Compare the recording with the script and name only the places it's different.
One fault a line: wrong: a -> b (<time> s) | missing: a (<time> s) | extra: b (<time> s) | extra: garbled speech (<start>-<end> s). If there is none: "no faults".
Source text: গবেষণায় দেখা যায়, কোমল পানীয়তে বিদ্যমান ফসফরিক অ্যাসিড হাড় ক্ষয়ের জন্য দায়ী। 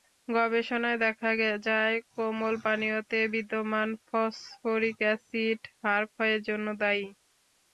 no faults